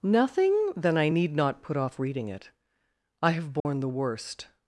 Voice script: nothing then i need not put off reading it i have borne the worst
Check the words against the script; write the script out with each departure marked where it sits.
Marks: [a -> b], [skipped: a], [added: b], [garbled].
nothing then i need not put off reading it i have borne the worst